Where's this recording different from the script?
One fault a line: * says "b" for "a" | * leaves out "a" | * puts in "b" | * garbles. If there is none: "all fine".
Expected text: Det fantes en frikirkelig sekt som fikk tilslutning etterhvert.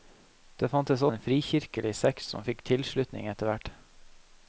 all fine